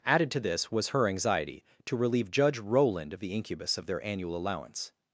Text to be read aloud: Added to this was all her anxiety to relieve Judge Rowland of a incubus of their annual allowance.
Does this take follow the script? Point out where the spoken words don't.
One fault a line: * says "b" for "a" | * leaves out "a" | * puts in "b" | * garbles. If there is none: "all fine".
* leaves out "all"
* says "the" for "a"